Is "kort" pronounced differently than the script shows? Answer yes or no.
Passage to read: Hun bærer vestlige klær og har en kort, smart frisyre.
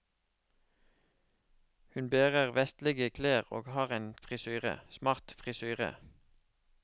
yes